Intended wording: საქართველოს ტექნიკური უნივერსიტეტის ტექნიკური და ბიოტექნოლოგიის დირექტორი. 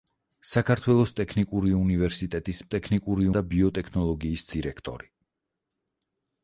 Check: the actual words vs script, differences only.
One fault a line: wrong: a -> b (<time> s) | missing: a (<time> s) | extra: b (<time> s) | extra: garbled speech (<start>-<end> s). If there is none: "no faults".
no faults